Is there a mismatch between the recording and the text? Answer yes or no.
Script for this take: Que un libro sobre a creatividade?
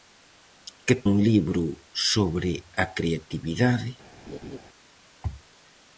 no